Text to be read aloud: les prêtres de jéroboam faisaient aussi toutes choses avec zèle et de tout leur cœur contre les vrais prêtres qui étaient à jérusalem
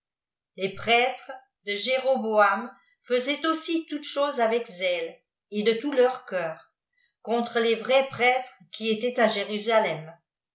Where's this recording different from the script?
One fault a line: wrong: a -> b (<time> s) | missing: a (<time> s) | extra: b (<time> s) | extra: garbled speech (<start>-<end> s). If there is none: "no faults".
no faults